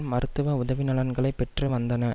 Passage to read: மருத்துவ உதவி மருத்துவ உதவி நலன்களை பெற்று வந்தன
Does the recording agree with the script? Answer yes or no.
no